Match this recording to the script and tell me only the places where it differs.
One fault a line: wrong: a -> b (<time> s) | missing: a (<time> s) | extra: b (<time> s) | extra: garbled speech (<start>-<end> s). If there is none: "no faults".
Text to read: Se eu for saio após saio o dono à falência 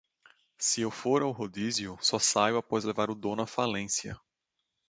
extra: ao rodízio só (1.2 s)
wrong: saio -> levar (2.8 s)